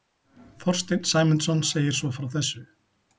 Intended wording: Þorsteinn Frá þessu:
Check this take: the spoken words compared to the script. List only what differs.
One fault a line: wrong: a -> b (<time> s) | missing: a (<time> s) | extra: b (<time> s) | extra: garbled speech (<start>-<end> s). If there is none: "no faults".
extra: Sæmundsson segir svo (1.1 s)